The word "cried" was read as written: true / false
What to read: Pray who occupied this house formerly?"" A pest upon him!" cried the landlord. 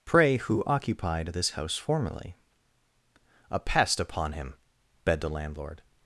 false